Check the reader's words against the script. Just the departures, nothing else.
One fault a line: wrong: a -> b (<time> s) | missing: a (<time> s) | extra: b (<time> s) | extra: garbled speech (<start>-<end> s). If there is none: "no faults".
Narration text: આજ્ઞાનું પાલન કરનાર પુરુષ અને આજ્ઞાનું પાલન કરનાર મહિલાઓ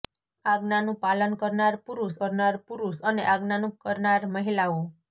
extra: કરનાર પુરુષ (2.2 s)
missing: પાલન (3.8 s)